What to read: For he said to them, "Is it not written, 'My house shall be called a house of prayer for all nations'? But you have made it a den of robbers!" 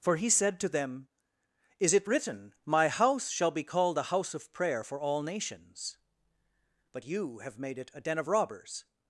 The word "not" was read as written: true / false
false